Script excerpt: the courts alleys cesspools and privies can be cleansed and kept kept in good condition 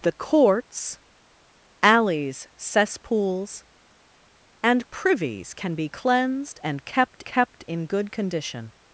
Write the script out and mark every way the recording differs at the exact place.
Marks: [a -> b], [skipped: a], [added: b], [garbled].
the courts alleys cesspools and privies can be cleansed and kept kept in good condition